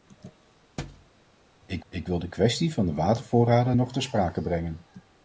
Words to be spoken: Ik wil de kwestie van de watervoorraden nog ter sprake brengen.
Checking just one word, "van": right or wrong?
right